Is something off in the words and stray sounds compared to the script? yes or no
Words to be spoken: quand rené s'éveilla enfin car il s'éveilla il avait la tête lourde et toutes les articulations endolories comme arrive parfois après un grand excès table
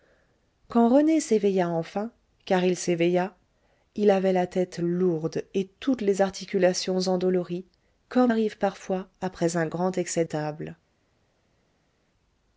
no